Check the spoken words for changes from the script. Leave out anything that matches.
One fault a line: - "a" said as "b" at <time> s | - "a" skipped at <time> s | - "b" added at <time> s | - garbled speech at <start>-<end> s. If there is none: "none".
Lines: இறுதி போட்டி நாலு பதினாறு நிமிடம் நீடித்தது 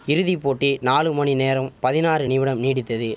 - "மணி நேரம்" added at 1.1 s